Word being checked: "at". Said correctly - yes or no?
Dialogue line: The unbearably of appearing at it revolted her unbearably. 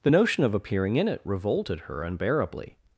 no